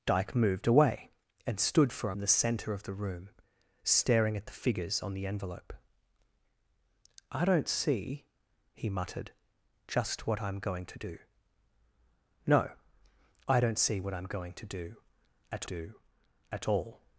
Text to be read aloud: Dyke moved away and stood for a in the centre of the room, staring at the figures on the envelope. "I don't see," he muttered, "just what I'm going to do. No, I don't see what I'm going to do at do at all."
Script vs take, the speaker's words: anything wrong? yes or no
no